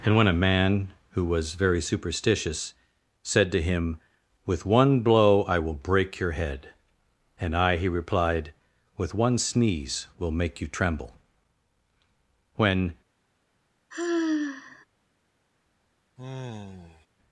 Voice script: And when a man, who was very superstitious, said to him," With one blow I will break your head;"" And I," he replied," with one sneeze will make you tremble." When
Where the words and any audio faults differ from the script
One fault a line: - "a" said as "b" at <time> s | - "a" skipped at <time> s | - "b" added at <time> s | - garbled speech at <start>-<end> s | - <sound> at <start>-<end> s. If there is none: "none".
- sigh at 13.9-14.9 s
- sigh at 16.2-17.1 s